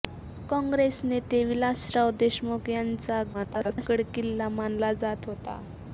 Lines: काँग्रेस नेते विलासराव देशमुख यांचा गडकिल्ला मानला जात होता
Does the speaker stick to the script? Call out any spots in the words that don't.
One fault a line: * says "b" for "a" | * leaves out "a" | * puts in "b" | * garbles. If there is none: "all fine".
* garbles